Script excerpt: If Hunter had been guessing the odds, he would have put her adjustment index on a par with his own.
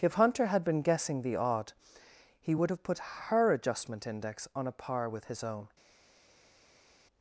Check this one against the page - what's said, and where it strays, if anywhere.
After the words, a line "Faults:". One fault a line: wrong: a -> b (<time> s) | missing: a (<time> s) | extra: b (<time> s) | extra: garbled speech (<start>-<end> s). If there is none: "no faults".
If Hunter had been guessing the odd, he would have put her adjustment index on a par with his own.
Faults:
wrong: odds -> odd (1.4 s)